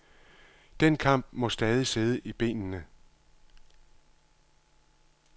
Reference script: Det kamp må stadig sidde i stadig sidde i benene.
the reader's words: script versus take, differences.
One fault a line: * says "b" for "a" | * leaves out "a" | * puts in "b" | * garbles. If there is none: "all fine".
* says "Den" for "Det"
* leaves out "stadig sidde i"